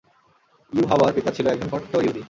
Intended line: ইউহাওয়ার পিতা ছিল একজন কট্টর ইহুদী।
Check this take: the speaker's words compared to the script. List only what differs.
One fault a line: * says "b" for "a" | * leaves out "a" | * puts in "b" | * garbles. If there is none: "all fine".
all fine